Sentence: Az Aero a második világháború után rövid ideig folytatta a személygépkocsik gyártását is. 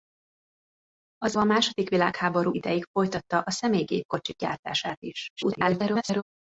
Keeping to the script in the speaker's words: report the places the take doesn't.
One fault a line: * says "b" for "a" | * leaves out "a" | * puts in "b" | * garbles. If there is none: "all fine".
* leaves out "Aero"
* leaves out "után rövid"
* garbles